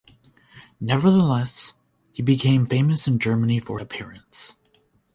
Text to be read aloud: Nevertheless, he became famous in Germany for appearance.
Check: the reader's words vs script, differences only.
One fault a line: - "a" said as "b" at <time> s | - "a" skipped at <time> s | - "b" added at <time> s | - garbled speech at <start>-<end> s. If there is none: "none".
none